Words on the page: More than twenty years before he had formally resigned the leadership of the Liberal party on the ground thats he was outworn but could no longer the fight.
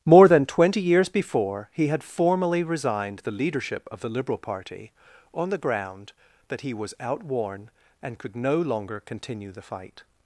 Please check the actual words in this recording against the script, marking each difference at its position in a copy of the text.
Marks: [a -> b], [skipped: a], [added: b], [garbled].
More than twenty years before he had formally resigned the leadership of the Liberal party on the ground [thats -> that] he was outworn [but -> and] could no longer [added: continue] the fight.